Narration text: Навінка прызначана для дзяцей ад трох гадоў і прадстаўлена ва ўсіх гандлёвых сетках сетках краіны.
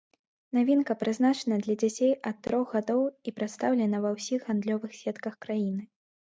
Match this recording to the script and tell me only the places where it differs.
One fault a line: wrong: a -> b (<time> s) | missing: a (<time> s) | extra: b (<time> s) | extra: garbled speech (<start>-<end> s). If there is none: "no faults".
missing: сетках (5.3 s)